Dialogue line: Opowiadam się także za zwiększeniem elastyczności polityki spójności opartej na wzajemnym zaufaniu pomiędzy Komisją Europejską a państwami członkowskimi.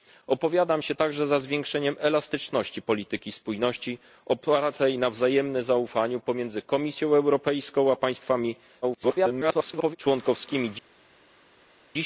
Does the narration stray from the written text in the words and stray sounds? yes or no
yes